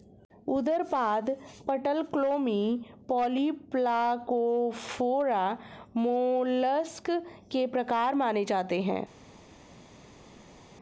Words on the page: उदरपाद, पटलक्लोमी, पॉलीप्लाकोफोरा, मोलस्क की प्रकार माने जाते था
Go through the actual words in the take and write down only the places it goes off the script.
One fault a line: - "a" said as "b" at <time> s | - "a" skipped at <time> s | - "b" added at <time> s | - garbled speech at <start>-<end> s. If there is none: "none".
- "की" said as "के" at 7.5 s
- "था" said as "है" at 8.8 s